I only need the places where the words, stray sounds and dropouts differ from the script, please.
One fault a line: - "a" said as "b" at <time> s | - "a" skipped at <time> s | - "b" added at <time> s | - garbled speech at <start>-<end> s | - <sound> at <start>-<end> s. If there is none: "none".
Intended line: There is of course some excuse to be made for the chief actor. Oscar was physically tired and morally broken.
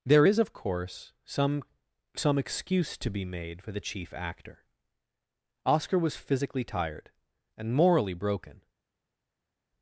- "some" added at 2.1 s